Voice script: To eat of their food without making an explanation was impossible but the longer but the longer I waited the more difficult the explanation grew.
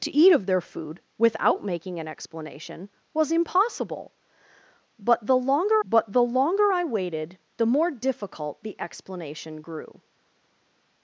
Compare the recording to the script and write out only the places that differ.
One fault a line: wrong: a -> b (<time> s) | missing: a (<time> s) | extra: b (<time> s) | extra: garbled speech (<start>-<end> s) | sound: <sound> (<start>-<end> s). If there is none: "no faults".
no faults